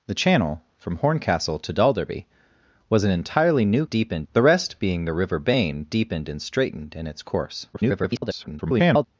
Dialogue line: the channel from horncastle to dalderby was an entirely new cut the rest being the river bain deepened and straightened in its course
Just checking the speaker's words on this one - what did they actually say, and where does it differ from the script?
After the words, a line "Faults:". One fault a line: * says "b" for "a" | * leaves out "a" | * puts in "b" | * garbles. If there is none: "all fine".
the channel from horncastle to dalderby was an entirely new deepened the rest being the river bain deepened and straightened in its course [garbled]
Faults:
* says "deepened" for "cut"
* garbles